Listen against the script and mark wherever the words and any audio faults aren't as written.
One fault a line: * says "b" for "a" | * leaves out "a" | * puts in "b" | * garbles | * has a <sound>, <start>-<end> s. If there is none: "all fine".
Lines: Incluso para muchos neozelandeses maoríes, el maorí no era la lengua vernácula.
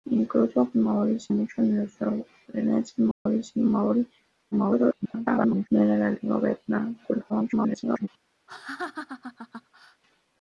* says "maoríes" for "para"
* has a dropout, 3.1-3.3 s
* garbles
* garbles
* has a laugh, 8.5-10.0 s